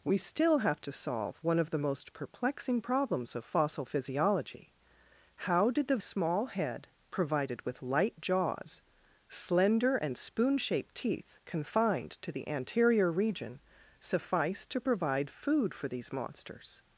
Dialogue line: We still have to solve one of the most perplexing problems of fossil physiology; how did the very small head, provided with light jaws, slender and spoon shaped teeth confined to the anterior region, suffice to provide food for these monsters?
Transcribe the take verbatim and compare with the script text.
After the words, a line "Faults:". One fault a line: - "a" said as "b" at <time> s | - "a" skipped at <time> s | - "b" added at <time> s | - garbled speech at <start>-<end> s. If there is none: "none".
We still have to solve one of the most perplexing problems of fossil physiology; how did the small head, provided with light jaws, slender and spoon shaped teeth confined to the anterior region, suffice to provide food for these monsters?
Faults:
- "very" skipped at 6.0 s